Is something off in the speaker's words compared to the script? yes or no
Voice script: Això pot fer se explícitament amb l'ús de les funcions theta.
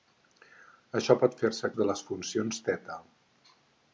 yes